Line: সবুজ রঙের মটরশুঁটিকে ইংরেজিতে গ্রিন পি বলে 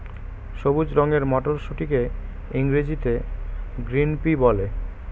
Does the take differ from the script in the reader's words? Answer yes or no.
no